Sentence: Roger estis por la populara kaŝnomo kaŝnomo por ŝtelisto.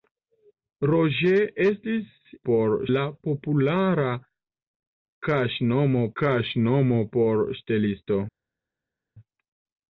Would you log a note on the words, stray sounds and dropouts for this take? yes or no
no